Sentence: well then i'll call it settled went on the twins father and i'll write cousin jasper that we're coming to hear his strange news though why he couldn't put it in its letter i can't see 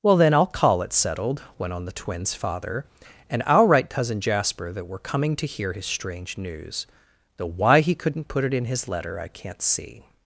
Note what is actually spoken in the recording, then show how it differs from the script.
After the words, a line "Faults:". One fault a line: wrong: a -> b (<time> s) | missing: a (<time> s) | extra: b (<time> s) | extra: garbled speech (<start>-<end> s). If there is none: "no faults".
well then i'll call it settled went on the twins father and i'll write cousin jasper that we're coming to hear his strange news though why he couldn't put it in his letter i can't see
Faults:
wrong: its -> his (8.7 s)